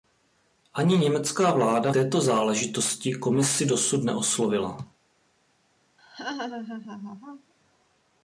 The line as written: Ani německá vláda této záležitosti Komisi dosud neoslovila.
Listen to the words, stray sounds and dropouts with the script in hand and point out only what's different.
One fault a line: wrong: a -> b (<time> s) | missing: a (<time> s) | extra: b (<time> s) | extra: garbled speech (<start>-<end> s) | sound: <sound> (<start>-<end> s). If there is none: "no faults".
sound: laugh (6.0-7.5 s)